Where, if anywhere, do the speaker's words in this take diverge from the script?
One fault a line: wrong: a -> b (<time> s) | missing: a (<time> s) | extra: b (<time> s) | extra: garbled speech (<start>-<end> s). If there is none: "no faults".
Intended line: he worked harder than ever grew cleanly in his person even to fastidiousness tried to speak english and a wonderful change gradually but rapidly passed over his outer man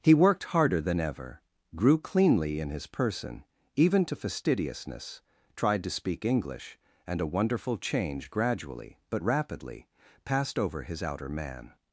no faults